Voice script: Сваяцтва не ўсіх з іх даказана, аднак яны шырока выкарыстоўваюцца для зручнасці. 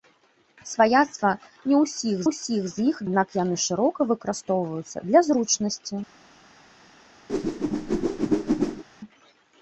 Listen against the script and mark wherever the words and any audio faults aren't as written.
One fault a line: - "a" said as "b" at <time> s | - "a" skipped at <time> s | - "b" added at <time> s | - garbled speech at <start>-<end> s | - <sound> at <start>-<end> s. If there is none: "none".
- "ўсіх" added at 2.3 s
- "даказана" skipped at 3.0 s
- whoosh at 7.3-8.8 s